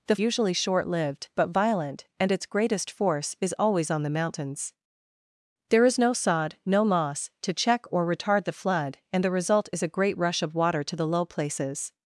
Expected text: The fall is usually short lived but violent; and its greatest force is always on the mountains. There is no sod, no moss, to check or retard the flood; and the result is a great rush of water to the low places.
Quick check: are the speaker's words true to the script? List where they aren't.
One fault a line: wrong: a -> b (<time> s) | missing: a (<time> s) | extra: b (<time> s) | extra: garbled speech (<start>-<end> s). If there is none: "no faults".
missing: fall is (0.1 s)